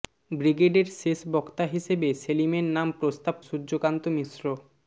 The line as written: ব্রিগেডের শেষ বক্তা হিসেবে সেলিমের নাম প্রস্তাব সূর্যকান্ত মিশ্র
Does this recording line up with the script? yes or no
yes